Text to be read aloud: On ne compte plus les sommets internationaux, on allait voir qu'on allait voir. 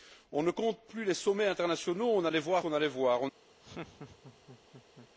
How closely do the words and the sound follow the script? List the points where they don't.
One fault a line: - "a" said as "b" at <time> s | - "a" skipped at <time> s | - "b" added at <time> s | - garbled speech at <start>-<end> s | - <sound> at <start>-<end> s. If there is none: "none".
- laugh at 3.6-5.1 s